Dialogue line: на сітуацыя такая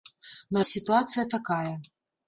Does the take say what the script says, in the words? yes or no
yes